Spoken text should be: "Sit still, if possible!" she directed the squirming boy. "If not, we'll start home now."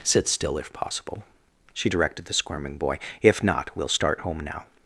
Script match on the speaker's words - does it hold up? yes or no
yes